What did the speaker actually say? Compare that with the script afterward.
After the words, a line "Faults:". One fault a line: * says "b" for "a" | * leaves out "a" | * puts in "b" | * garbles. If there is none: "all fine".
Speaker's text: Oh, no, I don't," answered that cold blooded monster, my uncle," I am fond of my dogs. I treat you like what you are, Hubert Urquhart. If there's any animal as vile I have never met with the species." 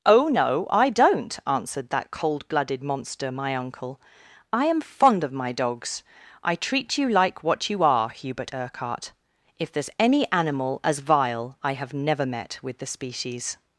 Oh, no, I don't," answered that cold blooded monster, my uncle," I am fond of my dogs. I treat you like what you are, Hubert Urquhart. If there's any animal as vile I have never met with the species."
Faults:
all fine